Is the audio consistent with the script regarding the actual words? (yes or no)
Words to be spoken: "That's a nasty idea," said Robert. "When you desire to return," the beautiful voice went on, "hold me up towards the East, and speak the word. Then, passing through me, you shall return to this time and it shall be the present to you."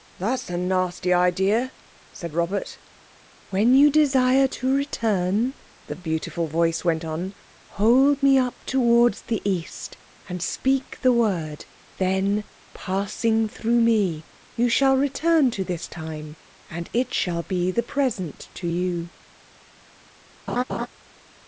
yes